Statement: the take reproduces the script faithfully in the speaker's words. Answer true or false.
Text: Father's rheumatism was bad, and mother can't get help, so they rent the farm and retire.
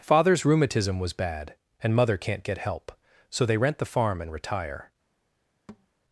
true